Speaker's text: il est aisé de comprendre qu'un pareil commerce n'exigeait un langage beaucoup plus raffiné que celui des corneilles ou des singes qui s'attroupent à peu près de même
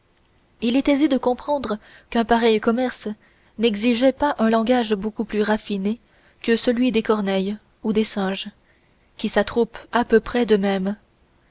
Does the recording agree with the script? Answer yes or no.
no